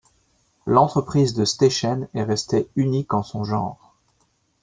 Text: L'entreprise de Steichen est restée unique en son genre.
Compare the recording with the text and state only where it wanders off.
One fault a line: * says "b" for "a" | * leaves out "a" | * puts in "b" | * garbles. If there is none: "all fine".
all fine